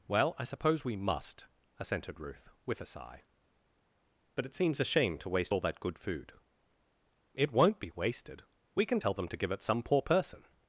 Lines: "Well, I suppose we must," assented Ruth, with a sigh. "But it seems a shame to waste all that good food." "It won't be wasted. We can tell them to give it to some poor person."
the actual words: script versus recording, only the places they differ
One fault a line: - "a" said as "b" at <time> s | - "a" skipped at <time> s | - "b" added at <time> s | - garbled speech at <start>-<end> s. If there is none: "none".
- "to" skipped at 9.6 s